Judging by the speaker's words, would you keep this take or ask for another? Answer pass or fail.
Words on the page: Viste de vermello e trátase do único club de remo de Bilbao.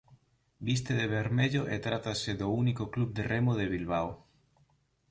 pass